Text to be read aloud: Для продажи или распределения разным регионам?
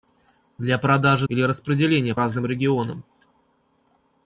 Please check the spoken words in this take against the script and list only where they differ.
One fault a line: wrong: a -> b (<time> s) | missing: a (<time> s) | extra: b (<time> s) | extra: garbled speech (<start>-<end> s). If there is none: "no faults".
no faults